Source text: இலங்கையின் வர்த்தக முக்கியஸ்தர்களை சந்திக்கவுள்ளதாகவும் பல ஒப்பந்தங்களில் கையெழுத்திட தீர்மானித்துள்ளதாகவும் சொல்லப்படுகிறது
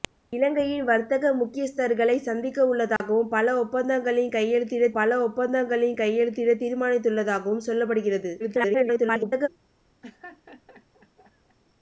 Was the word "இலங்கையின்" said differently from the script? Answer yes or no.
no